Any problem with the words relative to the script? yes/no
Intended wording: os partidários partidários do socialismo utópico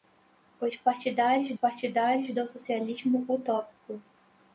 no